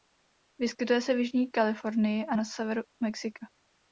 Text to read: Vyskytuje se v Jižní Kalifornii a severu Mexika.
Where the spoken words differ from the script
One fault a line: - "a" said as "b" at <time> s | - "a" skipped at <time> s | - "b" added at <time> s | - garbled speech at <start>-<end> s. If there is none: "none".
- "na" added at 2.3 s